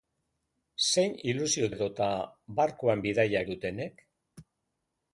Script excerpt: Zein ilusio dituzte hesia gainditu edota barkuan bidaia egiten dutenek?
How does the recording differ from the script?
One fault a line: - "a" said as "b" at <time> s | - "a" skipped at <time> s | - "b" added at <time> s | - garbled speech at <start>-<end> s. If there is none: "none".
- "dituzte hesia gainditu" skipped at 1.7 s
- "egiten" skipped at 3.5 s